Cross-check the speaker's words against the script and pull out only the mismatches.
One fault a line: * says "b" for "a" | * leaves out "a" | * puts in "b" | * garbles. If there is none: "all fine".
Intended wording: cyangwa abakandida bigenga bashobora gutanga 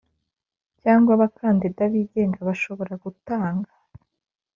all fine